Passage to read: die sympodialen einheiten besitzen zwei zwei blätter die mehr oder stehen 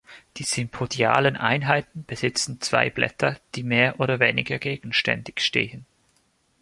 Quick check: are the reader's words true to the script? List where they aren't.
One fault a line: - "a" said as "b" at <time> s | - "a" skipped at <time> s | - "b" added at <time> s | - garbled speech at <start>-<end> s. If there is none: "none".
- "zwei" skipped at 2.9 s
- "weniger gegenständig" added at 4.2 s